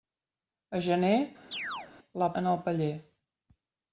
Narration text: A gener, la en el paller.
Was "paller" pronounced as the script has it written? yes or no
yes